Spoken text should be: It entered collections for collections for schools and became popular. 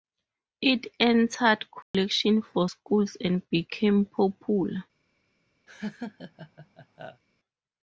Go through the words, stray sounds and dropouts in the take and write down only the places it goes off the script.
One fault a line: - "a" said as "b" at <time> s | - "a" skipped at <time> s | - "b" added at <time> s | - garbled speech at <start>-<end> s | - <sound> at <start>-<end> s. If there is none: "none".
- dropout at 1.8-1.9 s
- "collections for" skipped at 2.7 s
- laugh at 5.7-7.2 s